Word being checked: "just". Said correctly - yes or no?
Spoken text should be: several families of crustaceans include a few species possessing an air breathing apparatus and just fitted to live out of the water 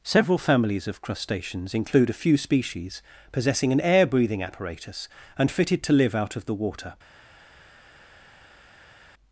no